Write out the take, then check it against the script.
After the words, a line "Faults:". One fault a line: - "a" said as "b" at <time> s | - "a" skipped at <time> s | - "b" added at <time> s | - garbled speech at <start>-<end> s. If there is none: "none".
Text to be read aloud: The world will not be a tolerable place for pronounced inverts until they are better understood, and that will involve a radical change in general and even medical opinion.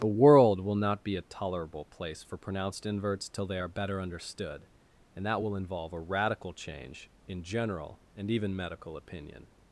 The world will not be a tolerable place for pronounced inverts till they are better understood, and that will involve a radical change in general and even medical opinion.
Faults:
- "until" said as "till" at 3.3 s